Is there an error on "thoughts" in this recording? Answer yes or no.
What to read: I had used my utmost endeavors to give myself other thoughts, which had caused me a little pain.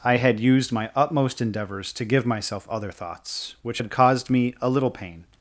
no